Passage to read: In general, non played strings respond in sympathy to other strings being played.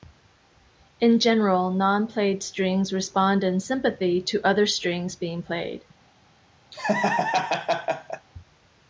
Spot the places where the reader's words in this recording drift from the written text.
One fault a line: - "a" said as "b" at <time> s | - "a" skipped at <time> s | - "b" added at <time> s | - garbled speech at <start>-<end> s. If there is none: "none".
none